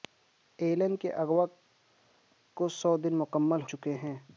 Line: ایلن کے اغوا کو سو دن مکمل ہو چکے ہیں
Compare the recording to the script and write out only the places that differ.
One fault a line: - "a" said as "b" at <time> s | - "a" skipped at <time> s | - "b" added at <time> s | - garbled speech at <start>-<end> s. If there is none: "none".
- "ہو" skipped at 3.6 s